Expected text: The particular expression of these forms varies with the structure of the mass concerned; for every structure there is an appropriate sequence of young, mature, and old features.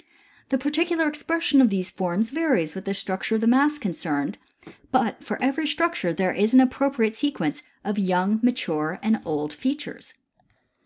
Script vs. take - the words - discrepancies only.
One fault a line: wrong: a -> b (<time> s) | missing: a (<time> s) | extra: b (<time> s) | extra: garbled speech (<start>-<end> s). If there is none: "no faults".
extra: but (4.9 s)